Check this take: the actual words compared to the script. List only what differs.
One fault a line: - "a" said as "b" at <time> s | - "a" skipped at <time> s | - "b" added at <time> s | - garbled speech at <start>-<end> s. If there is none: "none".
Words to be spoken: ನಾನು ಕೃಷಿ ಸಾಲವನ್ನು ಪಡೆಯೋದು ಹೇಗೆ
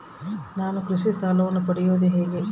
none